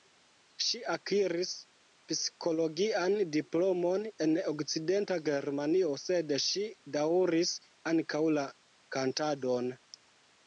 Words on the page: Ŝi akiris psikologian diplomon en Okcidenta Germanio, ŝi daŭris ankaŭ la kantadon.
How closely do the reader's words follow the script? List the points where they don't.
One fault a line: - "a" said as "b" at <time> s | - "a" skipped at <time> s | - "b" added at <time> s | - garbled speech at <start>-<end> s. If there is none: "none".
- "sed" added at 6.0 s